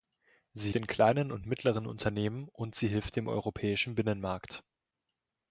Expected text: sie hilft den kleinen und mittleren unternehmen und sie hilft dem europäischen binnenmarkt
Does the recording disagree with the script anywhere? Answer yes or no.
yes